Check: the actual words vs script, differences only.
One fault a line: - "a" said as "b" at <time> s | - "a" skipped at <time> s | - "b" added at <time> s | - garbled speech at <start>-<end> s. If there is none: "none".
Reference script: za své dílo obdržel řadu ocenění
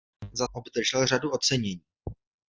- "své dílo" skipped at 0.5 s